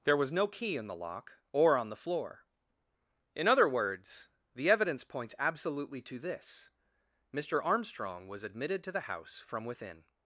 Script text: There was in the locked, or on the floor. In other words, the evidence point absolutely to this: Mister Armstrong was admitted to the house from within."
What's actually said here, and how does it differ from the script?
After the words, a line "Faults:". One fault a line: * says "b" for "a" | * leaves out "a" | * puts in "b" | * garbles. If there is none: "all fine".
There was no key in the lock, or on the floor. In other words, the evidence points absolutely to this: Mister Armstrong was admitted to the house from within."
Faults:
* puts in "no key"
* says "lock" for "locked"
* says "points" for "point"